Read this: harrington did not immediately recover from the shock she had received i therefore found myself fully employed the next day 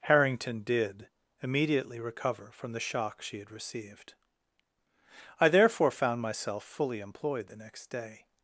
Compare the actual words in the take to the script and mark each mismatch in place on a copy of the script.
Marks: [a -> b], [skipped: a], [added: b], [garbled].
harrington did [skipped: not] immediately recover from the shock she had received i therefore found myself fully employed the next day